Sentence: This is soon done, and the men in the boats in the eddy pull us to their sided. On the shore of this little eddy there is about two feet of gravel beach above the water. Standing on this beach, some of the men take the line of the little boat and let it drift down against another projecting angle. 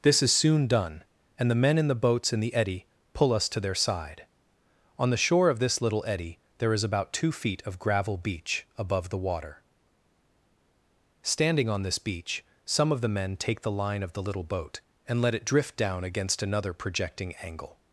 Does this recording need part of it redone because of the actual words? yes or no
yes